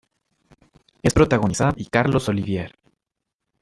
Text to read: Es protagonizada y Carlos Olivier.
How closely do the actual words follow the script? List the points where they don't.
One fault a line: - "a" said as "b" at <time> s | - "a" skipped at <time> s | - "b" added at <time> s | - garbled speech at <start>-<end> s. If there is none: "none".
none